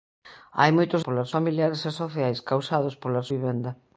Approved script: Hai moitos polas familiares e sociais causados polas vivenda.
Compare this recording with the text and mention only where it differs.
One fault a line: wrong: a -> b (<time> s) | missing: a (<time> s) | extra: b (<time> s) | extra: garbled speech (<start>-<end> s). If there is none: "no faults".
no faults